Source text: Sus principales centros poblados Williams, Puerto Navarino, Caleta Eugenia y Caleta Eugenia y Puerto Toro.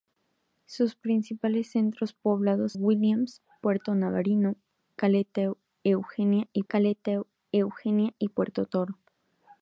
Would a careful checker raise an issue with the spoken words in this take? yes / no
no